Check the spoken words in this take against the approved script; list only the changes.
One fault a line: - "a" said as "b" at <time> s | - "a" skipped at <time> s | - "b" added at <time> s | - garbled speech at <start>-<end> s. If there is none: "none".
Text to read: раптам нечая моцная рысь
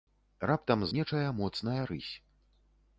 none